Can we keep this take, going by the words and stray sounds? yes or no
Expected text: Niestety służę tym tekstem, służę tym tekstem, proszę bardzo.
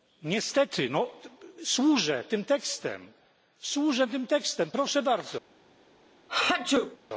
no